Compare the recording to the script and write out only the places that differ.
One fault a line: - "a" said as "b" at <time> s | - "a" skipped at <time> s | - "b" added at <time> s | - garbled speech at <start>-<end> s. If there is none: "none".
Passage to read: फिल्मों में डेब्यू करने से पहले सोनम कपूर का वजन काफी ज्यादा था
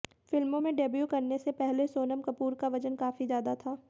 none